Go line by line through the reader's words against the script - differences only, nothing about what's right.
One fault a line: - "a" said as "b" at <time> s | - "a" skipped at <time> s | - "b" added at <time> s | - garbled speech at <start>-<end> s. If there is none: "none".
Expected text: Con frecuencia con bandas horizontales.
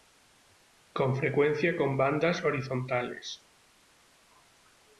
none